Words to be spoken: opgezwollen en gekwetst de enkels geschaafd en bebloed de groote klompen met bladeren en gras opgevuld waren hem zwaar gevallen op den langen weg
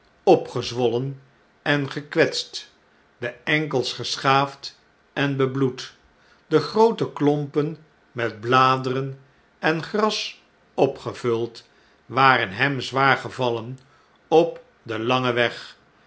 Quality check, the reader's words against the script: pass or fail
pass